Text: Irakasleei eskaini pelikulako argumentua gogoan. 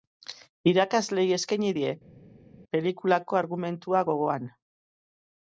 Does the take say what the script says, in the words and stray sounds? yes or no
no